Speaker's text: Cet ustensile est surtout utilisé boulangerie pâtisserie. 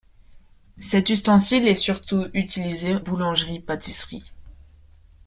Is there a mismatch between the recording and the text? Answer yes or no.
no